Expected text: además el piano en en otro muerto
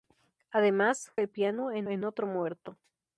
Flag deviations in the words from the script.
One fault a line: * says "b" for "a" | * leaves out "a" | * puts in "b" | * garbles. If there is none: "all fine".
all fine